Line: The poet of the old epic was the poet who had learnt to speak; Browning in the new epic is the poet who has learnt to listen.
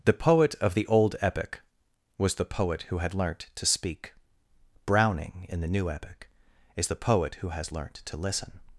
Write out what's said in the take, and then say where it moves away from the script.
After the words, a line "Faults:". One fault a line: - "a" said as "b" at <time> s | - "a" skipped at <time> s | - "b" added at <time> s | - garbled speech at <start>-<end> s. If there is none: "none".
The poet of the old epic was the poet who had learnt to speak; Browning in the new epic is the poet who has learnt to listen.
Faults:
none